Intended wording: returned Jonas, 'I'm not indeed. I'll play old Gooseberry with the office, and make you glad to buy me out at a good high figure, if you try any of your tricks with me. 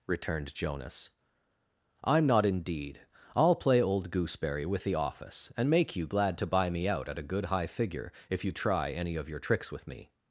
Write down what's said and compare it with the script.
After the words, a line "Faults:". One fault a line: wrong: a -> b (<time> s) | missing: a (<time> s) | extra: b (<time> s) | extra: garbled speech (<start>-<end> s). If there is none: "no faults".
returned Jonas, 'I'm not indeed. I'll play old Gooseberry with the office, and make you glad to buy me out at a good high figure, if you try any of your tricks with me.
Faults:
no faults